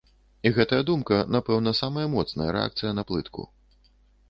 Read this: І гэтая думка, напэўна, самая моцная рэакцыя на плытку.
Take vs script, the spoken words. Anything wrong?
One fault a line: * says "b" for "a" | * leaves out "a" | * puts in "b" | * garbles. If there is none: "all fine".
all fine